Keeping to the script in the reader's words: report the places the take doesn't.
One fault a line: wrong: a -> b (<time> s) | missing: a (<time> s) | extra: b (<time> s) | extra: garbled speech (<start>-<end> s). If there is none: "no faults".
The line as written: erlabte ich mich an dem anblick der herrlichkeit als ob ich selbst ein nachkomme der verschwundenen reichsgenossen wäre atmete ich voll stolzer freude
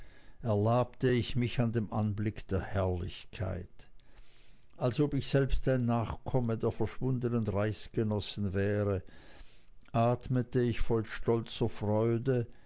no faults